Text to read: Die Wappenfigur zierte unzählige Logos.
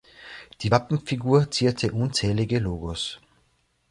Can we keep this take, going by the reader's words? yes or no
yes